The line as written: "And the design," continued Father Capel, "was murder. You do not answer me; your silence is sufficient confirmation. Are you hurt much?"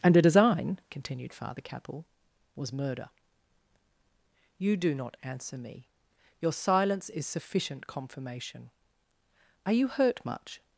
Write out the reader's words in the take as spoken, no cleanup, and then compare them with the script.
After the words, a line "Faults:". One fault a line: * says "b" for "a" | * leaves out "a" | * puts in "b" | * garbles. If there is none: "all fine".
"And a design," continued Father Capel, "was murder. You do not answer me; your silence is sufficient confirmation. Are you hurt much?"
Faults:
* says "a" for "the"